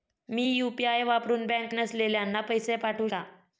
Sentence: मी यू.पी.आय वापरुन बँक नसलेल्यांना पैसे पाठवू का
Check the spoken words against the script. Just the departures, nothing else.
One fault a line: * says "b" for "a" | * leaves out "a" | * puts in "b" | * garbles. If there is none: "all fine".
all fine